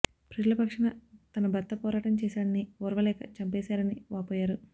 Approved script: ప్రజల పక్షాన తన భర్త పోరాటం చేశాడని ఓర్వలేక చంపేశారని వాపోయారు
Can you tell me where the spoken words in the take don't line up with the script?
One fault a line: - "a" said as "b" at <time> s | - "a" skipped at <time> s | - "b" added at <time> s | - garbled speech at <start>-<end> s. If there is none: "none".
none